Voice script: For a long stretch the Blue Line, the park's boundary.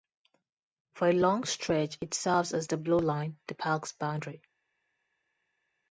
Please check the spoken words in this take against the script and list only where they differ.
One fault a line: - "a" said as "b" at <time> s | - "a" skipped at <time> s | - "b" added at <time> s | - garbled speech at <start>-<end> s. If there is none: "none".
- "it serves as" added at 2.0 s